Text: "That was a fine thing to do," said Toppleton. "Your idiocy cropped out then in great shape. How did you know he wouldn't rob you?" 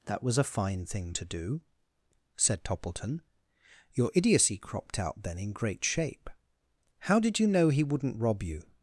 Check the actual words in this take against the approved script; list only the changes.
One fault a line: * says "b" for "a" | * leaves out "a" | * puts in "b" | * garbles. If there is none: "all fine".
all fine